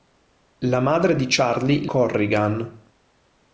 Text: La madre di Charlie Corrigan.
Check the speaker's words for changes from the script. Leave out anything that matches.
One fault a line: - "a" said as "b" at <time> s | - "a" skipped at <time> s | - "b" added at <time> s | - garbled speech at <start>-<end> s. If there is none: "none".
none